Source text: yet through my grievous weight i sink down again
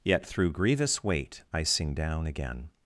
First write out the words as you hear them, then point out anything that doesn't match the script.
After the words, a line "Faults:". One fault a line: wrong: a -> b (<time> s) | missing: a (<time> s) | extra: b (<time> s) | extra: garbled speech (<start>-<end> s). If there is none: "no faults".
yet through grievous weight i sing down again
Faults:
missing: my (0.5 s)
wrong: sink -> sing (1.6 s)